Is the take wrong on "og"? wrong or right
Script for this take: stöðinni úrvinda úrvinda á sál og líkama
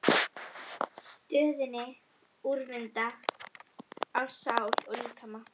right